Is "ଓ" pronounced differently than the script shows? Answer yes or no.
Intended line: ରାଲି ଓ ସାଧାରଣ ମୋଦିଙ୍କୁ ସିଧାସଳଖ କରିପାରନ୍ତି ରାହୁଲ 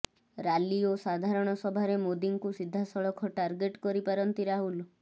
no